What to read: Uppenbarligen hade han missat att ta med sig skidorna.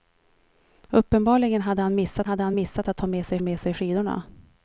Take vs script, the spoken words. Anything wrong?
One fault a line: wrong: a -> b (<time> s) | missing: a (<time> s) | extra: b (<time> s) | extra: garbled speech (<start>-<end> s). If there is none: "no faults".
extra: hade han missat (2.2 s)
extra: med sig (3.4 s)